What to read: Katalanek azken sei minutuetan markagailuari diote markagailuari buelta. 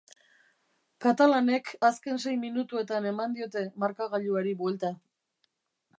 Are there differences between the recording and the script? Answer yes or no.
yes